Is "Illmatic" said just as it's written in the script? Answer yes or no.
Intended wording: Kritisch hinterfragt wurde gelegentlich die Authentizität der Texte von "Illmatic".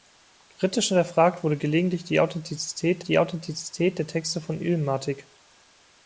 yes